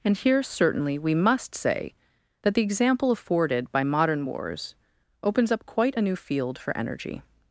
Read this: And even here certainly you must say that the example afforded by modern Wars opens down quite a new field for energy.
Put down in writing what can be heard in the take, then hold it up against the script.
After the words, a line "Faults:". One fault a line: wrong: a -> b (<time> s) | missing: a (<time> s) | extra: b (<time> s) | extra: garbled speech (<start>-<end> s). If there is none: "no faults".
And here certainly we must say that the example afforded by modern Wars opens up quite a new field for energy.
Faults:
missing: even (0.2 s)
wrong: you -> we (1.0 s)
wrong: down -> up (5.5 s)